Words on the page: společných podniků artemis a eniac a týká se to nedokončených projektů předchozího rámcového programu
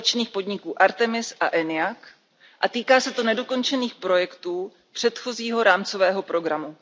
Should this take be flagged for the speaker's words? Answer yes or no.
no